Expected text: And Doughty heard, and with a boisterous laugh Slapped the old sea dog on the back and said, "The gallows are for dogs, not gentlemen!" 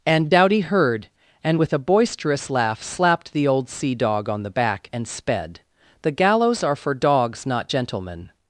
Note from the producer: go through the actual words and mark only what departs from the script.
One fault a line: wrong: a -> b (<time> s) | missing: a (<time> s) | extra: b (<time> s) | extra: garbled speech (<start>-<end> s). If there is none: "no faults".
wrong: said -> sped (5.1 s)